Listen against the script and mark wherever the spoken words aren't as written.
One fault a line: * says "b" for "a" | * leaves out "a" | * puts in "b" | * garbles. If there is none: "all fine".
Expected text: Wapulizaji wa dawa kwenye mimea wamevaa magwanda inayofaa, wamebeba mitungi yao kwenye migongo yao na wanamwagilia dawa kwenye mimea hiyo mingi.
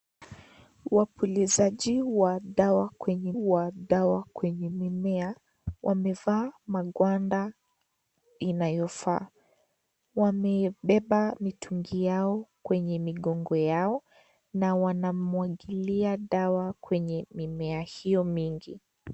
* puts in "wa dawa kwenye"